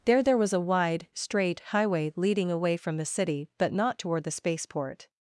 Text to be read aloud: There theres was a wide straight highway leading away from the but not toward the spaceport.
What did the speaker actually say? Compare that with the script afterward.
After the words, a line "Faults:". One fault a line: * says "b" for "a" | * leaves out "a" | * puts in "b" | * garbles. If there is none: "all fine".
There there was a wide straight highway leading away from the city but not toward the spaceport.
Faults:
* says "there" for "theres"
* puts in "city"